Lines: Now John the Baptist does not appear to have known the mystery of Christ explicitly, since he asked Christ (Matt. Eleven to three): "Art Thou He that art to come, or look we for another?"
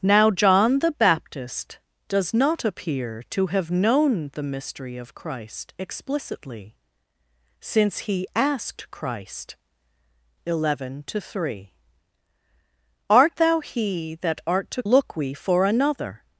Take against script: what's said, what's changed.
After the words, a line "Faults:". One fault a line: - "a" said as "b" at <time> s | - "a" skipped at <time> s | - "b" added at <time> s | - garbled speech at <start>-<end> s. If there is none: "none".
Now John the Baptist does not appear to have known the mystery of Christ explicitly, since he asked Christ. (Eleven to three): "Art Thou He that art to look we for another?"
Faults:
- "Matt" skipped at 9.6 s
- "come or" skipped at 14.8 s